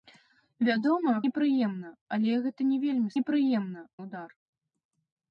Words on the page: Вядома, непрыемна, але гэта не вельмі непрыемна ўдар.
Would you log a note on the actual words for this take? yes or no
no